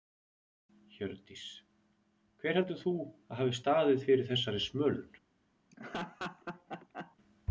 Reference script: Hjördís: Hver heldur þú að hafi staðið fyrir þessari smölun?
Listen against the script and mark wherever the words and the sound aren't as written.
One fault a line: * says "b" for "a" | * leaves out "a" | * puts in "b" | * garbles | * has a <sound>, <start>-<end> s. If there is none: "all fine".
* has a laugh, 5.7-7.2 s